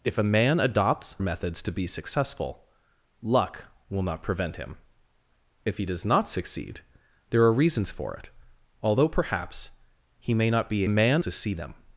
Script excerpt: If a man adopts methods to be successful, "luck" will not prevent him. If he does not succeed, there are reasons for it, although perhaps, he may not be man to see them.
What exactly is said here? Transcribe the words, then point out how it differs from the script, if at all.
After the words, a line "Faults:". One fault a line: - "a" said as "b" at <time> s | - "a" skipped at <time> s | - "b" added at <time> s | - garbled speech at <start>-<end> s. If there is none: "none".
If a man adopts methods to be successful, "luck" will not prevent him. If he does not succeed, there are reasons for it, although perhaps, he may not be man to see them.
Faults:
none